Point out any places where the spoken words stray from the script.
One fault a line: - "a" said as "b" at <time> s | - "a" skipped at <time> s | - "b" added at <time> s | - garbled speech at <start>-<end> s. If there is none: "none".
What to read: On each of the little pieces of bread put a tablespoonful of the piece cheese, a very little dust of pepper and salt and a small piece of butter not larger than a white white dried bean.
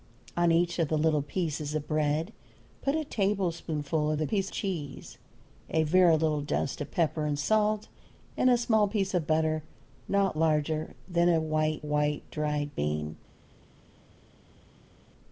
none